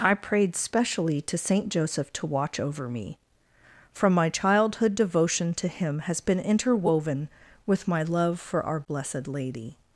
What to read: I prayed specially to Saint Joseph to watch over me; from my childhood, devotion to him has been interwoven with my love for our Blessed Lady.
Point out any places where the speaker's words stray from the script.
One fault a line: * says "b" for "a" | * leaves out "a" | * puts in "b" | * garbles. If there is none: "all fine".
all fine